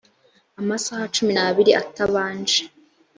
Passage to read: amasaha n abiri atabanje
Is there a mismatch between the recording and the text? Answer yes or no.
yes